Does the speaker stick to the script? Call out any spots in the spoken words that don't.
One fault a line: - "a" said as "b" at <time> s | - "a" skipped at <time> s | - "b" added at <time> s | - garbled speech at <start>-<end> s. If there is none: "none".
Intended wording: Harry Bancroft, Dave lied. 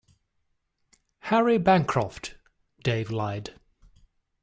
none